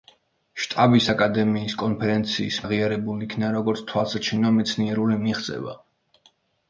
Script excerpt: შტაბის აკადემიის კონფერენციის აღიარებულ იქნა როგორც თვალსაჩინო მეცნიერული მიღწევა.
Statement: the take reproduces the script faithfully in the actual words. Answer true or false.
true